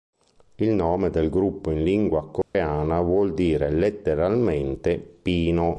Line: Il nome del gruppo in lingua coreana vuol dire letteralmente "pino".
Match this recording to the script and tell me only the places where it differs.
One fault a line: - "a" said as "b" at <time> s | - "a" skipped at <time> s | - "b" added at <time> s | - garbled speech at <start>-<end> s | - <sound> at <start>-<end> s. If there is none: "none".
- dropout at 2.4-2.5 s